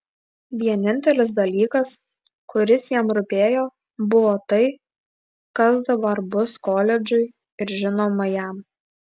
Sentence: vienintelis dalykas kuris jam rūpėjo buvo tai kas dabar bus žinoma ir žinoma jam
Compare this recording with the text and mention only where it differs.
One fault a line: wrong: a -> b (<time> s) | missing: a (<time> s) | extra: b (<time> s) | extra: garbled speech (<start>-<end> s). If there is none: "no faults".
wrong: žinoma -> koledžui (6.7 s)